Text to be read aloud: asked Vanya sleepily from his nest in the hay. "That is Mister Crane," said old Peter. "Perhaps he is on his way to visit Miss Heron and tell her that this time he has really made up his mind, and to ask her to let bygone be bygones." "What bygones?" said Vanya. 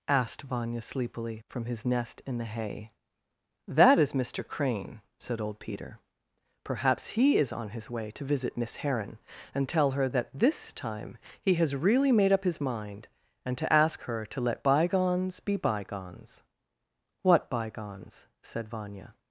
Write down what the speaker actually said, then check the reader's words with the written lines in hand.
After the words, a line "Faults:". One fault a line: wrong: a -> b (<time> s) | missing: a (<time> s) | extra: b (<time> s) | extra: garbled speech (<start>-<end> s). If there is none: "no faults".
asked Vanya sleepily from his nest in the hay. "That is Mister Crane," said old Peter. "Perhaps he is on his way to visit Miss Heron and tell her that this time he has really made up his mind, and to ask her to let bygones be bygones." "What bygones?" said Vanya.
Faults:
wrong: bygone -> bygones (14.6 s)